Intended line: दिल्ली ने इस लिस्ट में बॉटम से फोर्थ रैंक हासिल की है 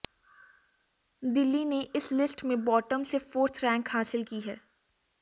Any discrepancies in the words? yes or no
no